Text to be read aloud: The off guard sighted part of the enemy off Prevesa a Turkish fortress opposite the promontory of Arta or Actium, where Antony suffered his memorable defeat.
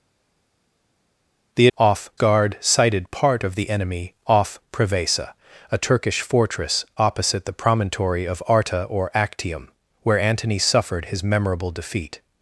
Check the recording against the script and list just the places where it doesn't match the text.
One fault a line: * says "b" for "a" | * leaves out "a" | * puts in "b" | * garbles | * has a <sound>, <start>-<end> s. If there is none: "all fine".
all fine